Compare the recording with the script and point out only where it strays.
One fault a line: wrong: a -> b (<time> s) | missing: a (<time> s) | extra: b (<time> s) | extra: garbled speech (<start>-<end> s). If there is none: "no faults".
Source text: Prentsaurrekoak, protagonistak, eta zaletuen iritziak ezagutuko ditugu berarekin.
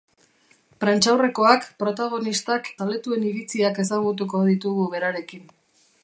missing: eta (2.7 s)